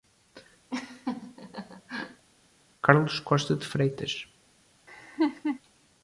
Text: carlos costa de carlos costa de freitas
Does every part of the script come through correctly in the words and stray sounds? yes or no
no